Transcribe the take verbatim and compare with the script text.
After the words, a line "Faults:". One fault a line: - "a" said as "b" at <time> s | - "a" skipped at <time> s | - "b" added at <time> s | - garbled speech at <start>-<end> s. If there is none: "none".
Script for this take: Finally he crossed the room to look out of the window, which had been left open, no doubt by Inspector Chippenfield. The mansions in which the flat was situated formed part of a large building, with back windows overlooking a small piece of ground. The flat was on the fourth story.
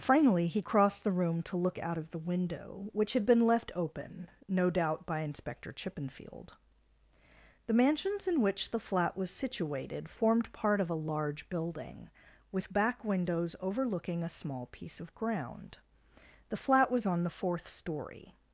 Finally he crossed the room to look out of the window, which had been left open, no doubt by Inspector Chippenfield. The mansions in which the flat was situated formed part of a large building, with back windows overlooking a small piece of ground. The flat was on the fourth story.
Faults:
none